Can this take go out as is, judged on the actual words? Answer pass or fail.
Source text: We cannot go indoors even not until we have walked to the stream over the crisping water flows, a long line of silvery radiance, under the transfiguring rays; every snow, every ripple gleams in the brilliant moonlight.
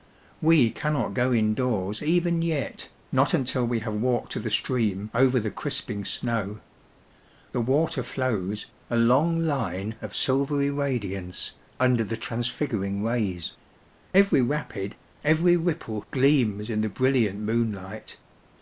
fail